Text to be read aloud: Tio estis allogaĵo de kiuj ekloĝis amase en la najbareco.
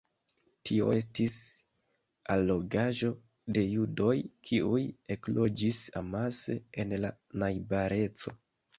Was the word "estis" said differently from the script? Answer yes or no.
no